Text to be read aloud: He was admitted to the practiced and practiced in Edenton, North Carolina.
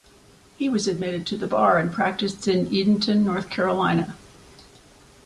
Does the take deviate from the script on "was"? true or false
false